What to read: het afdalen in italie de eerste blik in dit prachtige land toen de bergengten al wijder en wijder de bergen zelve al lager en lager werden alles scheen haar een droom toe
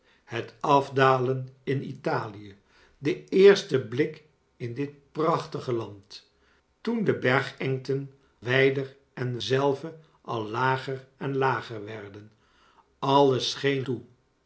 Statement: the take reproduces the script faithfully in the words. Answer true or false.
false